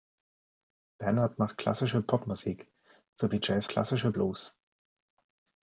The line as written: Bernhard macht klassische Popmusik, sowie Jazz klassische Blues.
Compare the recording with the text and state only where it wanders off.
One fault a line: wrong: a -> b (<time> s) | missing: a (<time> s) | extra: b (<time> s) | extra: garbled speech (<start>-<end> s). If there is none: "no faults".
no faults